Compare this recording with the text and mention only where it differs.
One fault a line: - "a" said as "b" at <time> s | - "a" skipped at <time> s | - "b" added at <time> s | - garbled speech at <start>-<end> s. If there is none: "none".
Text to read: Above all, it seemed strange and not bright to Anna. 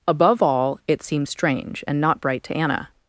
none